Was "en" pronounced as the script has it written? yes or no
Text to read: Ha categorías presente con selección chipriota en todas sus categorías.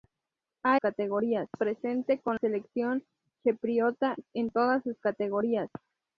yes